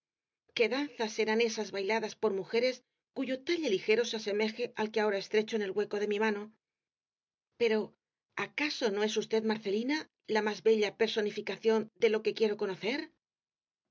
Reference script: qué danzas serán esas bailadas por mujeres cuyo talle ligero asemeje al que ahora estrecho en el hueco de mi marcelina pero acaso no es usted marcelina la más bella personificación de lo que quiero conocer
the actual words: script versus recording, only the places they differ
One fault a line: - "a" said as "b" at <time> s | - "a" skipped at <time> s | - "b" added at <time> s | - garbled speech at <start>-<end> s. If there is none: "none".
- "se" added at 4.0 s
- "marcelina" said as "mano" at 6.2 s